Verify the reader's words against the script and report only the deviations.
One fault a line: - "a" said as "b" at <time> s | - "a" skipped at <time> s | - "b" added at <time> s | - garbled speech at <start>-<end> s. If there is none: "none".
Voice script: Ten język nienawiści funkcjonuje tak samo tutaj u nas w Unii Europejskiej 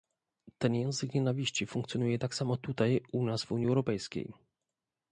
none